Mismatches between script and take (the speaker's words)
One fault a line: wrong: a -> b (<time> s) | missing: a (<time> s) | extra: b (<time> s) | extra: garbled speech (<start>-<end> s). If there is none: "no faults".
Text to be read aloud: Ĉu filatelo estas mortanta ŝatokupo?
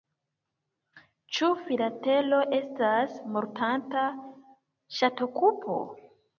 no faults